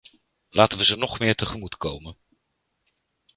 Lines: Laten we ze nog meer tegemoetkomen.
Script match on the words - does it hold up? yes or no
yes